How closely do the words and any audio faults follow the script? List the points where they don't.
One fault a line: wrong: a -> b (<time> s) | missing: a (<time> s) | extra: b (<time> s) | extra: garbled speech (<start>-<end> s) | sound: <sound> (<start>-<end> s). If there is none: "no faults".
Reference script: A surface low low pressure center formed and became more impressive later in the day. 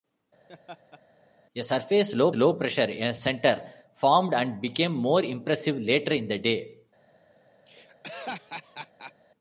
sound: laugh (0.5-1.0 s)
sound: laugh (7.7-9.1 s)